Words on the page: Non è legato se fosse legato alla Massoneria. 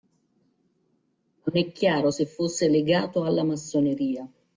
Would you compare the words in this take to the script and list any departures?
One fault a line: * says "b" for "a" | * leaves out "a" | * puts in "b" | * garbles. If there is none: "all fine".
* says "chiaro" for "legato"